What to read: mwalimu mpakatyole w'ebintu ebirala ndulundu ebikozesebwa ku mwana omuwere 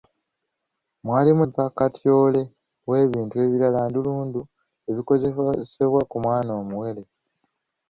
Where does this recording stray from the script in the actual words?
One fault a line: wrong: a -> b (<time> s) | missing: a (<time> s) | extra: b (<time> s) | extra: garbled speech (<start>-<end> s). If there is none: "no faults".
no faults